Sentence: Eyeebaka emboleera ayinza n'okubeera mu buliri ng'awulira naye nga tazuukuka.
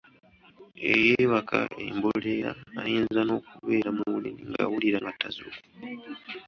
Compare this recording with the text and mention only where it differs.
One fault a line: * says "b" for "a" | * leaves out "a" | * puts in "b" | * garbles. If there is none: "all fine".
* leaves out "naye"